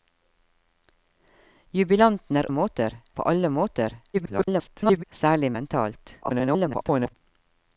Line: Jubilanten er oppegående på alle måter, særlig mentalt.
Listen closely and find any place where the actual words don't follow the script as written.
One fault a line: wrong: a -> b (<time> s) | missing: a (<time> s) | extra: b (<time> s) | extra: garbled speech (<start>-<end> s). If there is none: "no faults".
wrong: oppegående -> måter (2.5 s)
extra: garbled speech (4.1-5.0 s)
extra: garbled speech (6.2-7.1 s)